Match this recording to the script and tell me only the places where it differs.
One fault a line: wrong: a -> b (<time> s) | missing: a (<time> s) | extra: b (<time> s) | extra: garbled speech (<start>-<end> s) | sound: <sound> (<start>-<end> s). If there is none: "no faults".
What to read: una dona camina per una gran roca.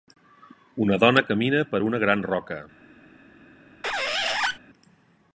sound: squeak (3.8-4.6 s)